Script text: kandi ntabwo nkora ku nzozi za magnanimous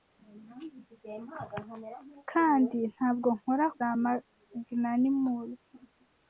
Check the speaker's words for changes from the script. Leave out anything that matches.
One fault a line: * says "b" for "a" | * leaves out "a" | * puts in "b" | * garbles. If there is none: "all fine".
* leaves out "ku nzozi"